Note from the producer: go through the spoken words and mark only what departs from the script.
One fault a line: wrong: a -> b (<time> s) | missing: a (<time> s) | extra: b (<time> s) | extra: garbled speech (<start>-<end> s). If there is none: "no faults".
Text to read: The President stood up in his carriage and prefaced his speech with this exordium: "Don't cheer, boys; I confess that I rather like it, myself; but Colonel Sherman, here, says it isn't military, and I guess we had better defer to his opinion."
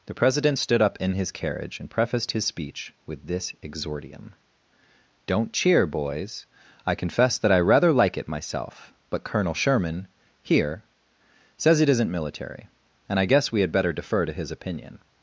no faults